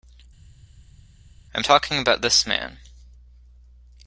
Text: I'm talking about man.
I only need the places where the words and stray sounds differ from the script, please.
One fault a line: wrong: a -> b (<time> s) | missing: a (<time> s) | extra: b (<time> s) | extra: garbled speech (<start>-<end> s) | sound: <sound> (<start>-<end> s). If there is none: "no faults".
extra: this (2.2 s)